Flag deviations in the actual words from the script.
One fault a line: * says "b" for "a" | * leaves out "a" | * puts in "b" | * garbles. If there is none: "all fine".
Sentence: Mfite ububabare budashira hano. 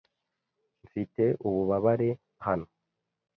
* leaves out "budashira"